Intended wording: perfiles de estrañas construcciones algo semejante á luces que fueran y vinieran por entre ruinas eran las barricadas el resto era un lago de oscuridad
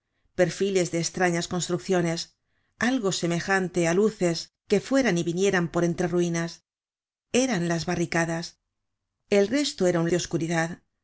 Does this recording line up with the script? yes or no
no